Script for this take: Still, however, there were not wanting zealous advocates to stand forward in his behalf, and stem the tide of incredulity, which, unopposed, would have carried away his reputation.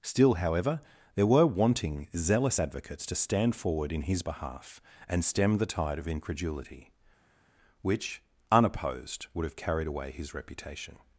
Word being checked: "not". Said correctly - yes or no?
no